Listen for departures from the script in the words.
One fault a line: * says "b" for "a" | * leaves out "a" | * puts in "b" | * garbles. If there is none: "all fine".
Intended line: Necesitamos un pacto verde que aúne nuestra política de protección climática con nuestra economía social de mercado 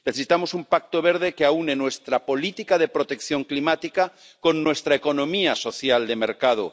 all fine